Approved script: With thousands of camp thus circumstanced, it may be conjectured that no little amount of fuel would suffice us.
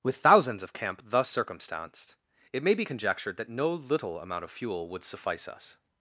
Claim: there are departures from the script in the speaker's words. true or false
false